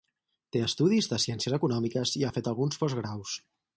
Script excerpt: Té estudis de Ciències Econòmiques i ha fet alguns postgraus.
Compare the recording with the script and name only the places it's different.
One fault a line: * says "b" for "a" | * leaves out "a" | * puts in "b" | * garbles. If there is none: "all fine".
all fine